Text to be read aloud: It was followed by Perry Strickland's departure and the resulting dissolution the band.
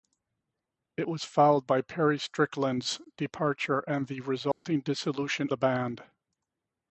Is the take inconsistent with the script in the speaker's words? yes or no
no